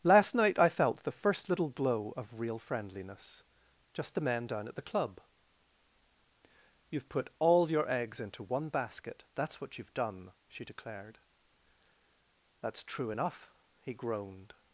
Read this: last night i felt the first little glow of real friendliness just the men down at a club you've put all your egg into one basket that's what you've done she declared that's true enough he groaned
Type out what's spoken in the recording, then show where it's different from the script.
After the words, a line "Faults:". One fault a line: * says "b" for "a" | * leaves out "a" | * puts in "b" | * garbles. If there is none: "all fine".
last night i felt the first little glow of real friendliness just the men down at the club you've put all your eggs into one basket that's what you've done she declared that's true enough he groaned
Faults:
* says "the" for "a"
* says "eggs" for "egg"